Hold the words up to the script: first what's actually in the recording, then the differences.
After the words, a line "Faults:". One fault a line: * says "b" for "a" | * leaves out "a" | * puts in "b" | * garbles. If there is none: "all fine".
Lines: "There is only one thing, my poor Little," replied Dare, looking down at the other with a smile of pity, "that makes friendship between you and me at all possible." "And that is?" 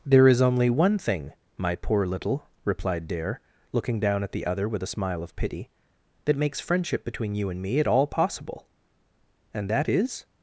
"There is only one thing, my poor Little," replied Dare, looking down at the other with a smile of pity, "that makes friendship between you and me at all possible." "And that is?"
Faults:
all fine